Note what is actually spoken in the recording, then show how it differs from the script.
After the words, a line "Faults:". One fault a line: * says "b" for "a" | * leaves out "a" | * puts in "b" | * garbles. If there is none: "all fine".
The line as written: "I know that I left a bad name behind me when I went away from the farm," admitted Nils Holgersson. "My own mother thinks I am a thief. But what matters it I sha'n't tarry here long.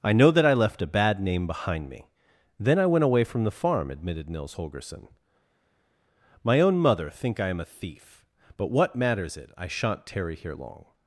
"I know that I left a bad name behind me then I went away from the farm," admitted Nils Holgersson. "My own mother think I am a thief. But what matters it I sha'n't tarry here long.
Faults:
* says "then" for "when"
* says "think" for "thinks"